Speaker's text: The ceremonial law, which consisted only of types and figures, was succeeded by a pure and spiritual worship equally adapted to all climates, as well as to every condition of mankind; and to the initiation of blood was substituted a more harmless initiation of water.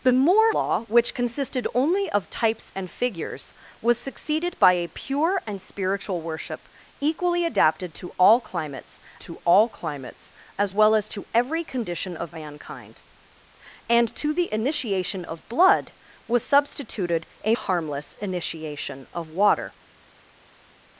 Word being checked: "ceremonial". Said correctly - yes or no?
no